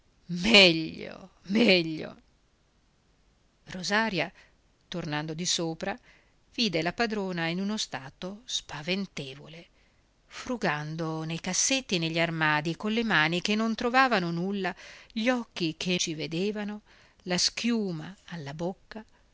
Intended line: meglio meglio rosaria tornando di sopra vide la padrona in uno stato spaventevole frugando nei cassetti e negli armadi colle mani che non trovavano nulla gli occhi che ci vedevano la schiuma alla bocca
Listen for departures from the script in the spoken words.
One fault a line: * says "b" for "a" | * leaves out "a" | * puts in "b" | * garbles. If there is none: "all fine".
all fine